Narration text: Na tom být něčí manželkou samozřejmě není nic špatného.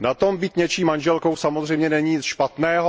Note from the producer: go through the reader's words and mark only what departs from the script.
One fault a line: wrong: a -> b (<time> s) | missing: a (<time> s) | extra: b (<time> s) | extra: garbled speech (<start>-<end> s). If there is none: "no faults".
no faults